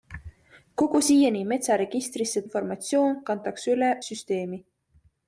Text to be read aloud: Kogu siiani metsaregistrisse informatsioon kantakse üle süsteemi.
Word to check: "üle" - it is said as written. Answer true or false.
true